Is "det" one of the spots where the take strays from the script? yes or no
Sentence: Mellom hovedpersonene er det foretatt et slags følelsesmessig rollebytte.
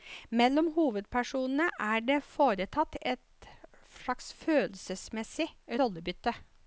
no